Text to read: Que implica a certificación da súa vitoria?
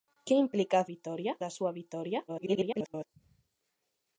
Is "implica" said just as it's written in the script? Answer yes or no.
yes